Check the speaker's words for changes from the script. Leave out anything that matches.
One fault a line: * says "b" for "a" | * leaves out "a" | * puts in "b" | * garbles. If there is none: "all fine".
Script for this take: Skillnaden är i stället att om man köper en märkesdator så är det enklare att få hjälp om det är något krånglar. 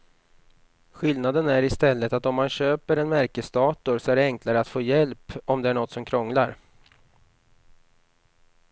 * puts in "som"